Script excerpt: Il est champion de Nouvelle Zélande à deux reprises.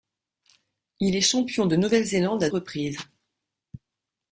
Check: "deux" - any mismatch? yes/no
yes